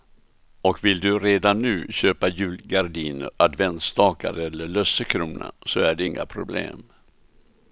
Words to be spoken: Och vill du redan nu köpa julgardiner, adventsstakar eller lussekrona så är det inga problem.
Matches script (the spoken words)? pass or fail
pass